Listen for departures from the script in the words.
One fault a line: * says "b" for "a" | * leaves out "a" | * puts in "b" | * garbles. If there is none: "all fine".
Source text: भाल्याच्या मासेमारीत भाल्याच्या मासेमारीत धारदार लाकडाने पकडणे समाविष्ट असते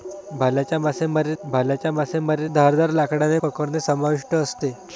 all fine